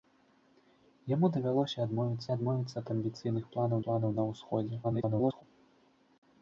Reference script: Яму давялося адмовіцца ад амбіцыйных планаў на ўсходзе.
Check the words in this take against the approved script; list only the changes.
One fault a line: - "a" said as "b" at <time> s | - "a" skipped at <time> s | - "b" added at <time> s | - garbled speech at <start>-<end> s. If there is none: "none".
- "адмовіцца" added at 2.3 s
- "планаў" added at 3.9 s
- garbled speech at 4.8-5.4 s